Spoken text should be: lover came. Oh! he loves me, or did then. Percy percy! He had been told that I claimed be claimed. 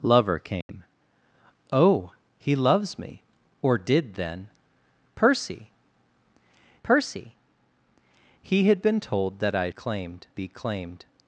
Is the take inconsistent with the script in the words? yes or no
no